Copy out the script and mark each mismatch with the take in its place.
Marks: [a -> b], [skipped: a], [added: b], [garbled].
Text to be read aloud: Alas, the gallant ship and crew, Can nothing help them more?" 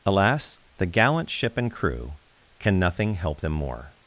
Alas, the gallant ship and crew, Can nothing help them more?"